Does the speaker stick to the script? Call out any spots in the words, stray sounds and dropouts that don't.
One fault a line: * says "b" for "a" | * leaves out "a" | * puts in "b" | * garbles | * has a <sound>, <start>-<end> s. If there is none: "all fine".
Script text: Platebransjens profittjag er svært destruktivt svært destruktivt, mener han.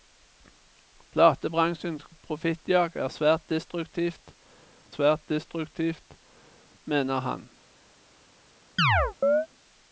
* has a chirp, 8.8-9.5 s